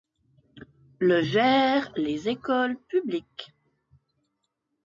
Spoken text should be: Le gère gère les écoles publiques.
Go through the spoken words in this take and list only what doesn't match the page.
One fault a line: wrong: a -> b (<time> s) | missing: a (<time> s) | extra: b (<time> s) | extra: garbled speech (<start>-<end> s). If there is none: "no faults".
missing: gère (1.9 s)